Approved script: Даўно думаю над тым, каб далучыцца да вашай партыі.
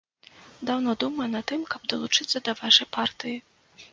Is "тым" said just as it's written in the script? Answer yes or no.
yes